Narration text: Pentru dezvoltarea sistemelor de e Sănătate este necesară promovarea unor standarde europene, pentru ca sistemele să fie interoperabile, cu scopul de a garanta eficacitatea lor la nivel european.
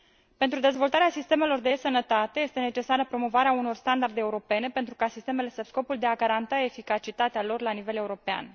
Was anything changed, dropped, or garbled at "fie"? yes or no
yes